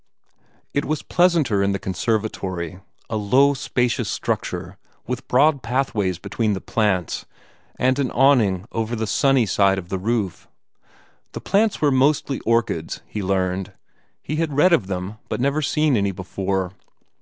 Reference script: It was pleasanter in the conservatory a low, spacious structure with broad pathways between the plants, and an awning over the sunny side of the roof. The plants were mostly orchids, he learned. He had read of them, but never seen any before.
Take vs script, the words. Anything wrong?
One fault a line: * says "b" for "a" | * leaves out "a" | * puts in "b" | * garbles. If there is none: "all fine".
all fine